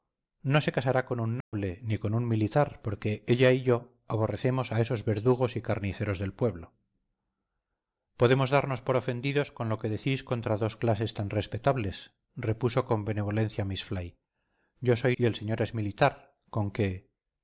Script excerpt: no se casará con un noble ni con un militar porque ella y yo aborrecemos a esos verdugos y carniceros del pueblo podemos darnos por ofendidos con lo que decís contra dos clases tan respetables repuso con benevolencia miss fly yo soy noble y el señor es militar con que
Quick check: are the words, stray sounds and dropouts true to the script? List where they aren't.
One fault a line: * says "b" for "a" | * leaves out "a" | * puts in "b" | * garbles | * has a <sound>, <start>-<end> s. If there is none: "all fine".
* has a dropout, 1.4-1.5 s
* leaves out "noble"